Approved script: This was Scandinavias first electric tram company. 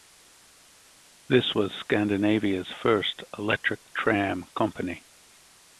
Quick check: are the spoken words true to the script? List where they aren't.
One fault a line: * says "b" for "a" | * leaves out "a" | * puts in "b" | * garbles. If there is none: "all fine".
all fine